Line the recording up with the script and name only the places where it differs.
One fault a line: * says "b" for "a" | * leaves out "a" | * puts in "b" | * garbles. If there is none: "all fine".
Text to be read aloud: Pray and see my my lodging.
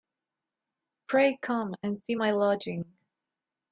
* puts in "come"
* leaves out "my"